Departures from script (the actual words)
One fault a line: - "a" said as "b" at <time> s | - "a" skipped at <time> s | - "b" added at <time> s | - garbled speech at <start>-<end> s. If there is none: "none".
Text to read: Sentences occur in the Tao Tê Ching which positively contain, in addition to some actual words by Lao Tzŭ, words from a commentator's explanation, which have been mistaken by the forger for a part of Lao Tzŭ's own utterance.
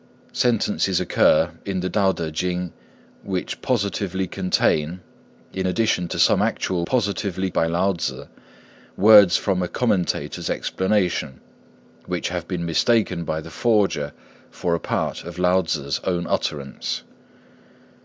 - "words" said as "positively" at 6.8 s